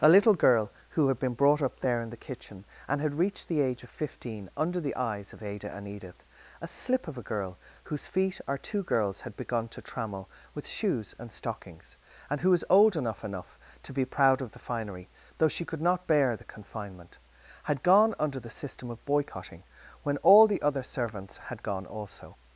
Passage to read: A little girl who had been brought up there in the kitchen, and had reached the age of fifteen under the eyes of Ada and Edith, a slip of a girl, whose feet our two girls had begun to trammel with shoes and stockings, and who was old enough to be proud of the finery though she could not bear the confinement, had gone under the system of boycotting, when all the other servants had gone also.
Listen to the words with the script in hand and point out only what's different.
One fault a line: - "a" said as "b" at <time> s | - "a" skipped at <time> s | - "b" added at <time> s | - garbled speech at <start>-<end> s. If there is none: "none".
- "enough" added at 13.2 s